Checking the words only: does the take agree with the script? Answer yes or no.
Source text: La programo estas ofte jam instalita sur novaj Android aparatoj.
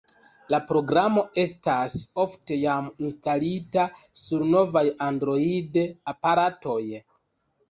yes